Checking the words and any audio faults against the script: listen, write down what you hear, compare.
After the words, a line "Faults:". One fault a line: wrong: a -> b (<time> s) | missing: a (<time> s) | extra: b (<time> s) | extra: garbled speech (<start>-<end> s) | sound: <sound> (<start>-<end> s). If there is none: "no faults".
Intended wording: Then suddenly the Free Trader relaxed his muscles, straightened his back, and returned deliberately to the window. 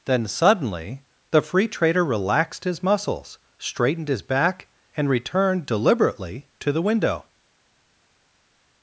Then suddenly the Free Trader relaxed his muscles, straightened his back, and returned deliberately to the window.
Faults:
no faults